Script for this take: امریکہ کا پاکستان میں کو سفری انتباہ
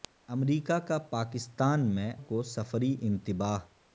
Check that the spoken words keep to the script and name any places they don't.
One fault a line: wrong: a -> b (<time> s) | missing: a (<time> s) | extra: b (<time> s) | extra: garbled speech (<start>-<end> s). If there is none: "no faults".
no faults